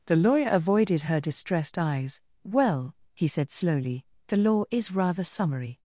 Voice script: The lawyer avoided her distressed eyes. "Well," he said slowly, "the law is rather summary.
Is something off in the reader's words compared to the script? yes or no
no